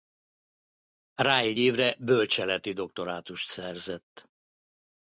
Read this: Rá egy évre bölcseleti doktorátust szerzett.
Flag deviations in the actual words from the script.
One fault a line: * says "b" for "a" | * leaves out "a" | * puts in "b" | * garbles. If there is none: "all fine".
all fine